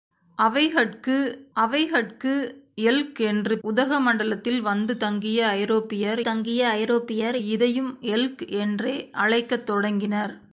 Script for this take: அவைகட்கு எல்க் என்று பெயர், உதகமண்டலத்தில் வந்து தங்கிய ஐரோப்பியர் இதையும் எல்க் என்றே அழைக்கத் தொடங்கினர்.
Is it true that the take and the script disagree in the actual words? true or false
true